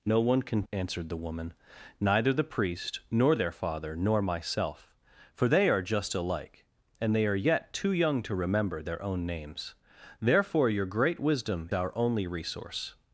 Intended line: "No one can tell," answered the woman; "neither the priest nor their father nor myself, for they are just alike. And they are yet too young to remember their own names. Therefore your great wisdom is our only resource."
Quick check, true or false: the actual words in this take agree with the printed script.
false